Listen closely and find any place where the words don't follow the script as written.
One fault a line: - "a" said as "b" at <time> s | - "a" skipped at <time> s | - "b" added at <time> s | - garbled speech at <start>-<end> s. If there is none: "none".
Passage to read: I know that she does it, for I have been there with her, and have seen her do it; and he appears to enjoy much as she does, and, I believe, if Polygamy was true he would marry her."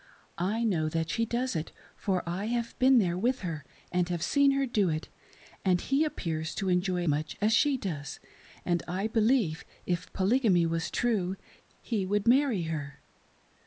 none